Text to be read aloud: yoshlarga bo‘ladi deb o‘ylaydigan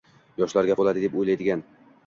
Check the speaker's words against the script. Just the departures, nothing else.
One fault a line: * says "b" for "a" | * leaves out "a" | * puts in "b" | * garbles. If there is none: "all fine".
all fine